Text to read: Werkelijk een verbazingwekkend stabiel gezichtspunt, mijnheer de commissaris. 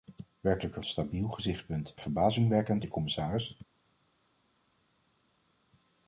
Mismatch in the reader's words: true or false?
true